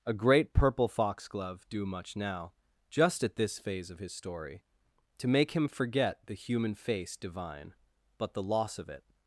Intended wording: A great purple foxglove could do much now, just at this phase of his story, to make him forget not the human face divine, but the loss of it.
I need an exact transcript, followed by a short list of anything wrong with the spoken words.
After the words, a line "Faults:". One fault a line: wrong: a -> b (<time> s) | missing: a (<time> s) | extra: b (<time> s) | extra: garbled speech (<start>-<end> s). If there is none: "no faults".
A great purple foxglove do much now, just at this phase of his story, to make him forget the human face divine, but the loss of it.
Faults:
missing: could (1.7 s)
missing: not (6.2 s)